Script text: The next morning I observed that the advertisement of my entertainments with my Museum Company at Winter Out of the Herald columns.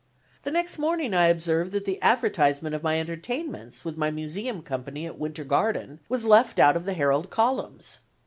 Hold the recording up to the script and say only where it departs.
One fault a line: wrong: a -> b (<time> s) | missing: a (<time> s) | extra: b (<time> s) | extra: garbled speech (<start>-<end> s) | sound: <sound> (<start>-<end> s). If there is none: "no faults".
extra: Garden was left (5.4 s)